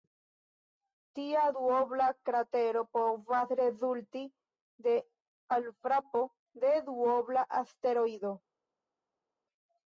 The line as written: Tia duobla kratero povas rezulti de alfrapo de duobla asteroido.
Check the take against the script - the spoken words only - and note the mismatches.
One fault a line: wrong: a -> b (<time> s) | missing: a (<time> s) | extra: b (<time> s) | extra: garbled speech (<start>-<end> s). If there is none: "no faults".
no faults